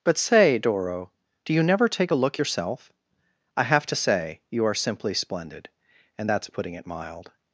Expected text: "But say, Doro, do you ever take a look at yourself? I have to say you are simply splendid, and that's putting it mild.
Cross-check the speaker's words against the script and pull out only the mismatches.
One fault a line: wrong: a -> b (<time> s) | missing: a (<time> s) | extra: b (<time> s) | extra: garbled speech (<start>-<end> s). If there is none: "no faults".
wrong: ever -> never (1.6 s)
missing: at (2.4 s)